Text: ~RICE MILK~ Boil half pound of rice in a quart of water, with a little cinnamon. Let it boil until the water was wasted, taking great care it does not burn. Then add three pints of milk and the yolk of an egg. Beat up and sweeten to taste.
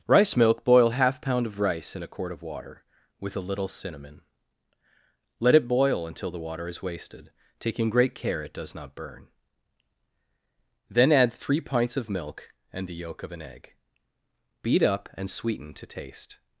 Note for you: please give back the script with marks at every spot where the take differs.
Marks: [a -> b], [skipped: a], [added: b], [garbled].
~RICE MILK~ Boil half pound of rice in a quart of water, with a little cinnamon. Let it boil until the water [was -> is] wasted, taking great care it does not burn. Then add three pints of milk and the yolk of an egg. Beat up and sweeten to taste.